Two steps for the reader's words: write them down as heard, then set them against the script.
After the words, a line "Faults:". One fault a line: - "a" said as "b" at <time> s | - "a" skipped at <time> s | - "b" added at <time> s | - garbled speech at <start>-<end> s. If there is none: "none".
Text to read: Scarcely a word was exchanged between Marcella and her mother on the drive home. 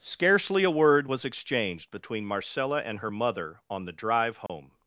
Scarcely a word was exchanged between Marcella and her mother on the drive home.
Faults:
none